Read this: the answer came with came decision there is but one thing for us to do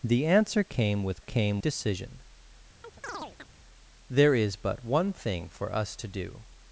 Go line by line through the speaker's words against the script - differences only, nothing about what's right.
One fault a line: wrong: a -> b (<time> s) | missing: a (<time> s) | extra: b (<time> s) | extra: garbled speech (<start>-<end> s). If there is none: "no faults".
no faults